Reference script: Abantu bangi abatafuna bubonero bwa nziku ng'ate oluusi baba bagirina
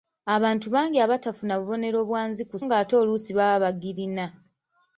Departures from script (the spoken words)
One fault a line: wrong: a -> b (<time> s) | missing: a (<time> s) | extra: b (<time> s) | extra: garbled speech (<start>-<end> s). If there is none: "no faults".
no faults